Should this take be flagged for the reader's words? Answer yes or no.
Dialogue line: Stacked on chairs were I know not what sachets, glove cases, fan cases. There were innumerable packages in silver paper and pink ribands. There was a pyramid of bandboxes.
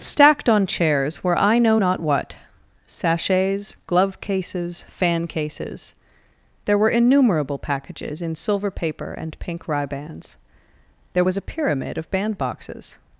no